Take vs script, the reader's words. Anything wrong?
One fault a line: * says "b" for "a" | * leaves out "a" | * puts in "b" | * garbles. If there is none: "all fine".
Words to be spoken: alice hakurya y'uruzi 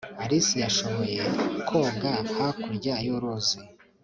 * puts in "yashoboye koga"